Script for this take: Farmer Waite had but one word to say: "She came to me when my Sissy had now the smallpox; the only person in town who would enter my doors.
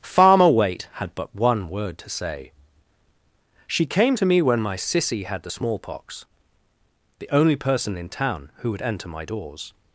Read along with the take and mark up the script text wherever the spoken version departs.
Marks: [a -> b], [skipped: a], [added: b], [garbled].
Farmer Waite had but one word to say: "She came to me when my Sissy had [skipped: now] the smallpox; the only person in town who would enter my doors.